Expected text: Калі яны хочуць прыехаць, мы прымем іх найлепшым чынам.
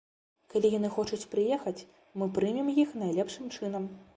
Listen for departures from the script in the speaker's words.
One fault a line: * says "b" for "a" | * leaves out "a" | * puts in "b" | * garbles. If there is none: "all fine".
all fine